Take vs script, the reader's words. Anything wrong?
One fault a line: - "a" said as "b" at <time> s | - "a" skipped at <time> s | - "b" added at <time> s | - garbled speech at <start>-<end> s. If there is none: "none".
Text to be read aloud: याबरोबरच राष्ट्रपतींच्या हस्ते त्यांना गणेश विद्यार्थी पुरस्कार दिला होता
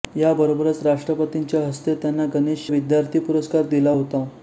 none